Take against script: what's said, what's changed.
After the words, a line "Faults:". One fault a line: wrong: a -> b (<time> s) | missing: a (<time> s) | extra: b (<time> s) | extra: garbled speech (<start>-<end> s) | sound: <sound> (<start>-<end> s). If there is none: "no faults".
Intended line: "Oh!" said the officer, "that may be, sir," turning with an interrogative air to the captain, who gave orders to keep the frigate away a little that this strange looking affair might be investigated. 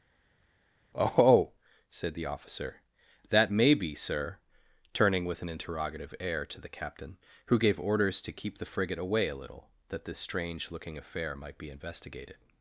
"Oh!" said the officer, "that may be, sir," turning with an interrogative air to the captain, who gave orders to keep the frigate away a little that this strange looking affair might be investigated.
Faults:
no faults